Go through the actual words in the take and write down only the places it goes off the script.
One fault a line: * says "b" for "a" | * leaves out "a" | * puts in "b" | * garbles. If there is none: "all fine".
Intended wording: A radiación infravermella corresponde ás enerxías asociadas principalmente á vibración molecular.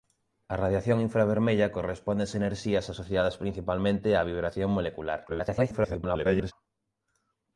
* garbles